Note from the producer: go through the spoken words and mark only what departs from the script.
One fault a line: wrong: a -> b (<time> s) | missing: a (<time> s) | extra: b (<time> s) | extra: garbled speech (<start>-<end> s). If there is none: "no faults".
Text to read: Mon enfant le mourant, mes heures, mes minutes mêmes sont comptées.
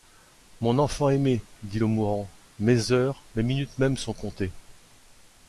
extra: aimé dit (1.1 s)